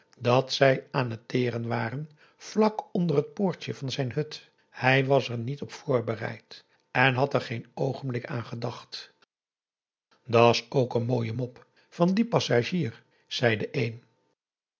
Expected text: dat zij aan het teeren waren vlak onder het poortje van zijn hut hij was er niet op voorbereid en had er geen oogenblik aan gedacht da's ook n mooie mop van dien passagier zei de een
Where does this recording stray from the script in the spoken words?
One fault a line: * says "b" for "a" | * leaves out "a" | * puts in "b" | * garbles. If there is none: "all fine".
all fine